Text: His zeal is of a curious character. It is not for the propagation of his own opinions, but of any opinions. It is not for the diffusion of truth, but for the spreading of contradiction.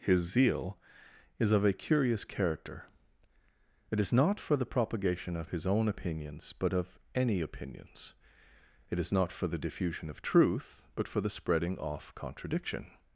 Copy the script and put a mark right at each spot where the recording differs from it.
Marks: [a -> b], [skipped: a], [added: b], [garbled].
His zeal is of a curious character. It is not for the propagation of his own opinions, but of any opinions. It is not for the diffusion of truth, but for the spreading [of -> off] contradiction.